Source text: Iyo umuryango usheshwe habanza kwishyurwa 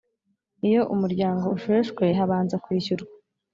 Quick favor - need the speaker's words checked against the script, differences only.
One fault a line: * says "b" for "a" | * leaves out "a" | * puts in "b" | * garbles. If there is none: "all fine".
all fine